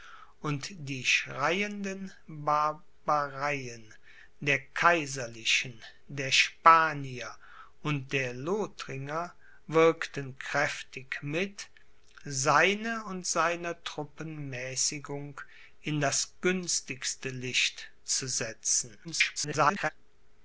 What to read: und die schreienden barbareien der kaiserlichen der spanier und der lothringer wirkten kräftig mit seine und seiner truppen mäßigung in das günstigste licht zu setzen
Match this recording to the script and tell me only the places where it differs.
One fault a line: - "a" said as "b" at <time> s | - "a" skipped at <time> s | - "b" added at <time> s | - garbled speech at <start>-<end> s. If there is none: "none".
- garbled speech at 19.0-19.9 s